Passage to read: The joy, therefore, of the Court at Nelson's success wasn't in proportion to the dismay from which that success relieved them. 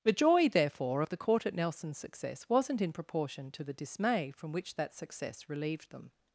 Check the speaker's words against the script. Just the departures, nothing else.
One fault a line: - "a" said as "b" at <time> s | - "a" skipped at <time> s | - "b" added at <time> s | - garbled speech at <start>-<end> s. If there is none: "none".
none